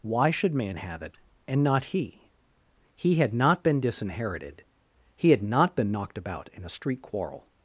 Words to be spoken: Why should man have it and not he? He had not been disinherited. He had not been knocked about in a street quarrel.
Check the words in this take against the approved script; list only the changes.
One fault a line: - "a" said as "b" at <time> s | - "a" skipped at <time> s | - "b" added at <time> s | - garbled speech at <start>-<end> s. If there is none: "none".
none